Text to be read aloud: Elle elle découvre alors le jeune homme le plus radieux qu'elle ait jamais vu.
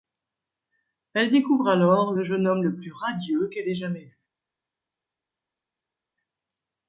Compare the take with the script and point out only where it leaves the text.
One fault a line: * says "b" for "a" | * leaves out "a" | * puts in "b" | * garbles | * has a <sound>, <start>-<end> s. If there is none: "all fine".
* leaves out "elle"